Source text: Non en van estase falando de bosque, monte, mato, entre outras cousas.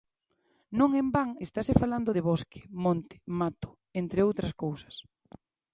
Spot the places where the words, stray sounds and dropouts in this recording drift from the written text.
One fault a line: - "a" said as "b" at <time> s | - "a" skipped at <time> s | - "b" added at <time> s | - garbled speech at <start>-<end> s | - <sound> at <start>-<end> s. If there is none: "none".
none